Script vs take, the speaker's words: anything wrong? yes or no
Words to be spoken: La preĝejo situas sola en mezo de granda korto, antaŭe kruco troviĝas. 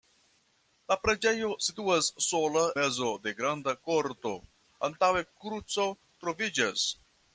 yes